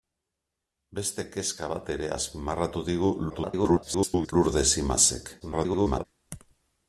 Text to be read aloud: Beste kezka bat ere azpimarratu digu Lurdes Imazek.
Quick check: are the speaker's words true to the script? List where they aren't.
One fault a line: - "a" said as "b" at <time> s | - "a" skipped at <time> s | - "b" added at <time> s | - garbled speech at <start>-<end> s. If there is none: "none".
- garbled speech at 3.3-4.3 s
- garbled speech at 5.4-6.1 s